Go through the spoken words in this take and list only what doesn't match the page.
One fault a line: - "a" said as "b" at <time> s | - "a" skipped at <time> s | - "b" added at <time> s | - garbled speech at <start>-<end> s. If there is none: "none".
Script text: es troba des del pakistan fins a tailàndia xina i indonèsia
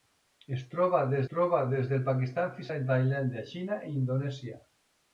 - "troba des" added at 1.3 s